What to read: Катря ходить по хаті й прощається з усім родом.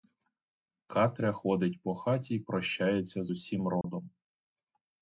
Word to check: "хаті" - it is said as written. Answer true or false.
true